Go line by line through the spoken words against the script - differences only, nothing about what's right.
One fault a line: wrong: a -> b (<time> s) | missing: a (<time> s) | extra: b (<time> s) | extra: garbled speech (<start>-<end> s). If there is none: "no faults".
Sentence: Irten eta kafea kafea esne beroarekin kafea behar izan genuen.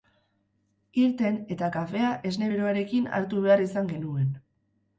missing: kafea (2.1 s)
wrong: kafea -> hartu (3.2 s)